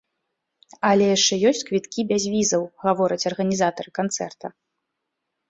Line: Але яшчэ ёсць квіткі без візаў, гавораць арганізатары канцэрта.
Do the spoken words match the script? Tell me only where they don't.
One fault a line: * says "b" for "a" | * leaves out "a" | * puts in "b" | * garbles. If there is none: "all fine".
all fine